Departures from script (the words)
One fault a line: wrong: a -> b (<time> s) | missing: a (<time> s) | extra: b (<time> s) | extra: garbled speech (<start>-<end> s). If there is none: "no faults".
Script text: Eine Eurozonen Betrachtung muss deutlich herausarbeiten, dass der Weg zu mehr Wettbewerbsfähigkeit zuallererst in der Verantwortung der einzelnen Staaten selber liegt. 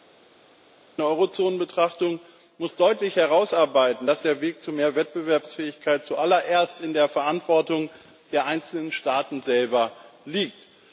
no faults